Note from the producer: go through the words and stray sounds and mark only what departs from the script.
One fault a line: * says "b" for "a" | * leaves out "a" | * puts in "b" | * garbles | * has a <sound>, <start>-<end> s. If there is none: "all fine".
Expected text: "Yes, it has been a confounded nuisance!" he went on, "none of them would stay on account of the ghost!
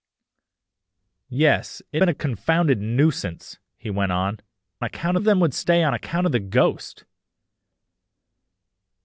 * leaves out "has"
* says "account" for "none"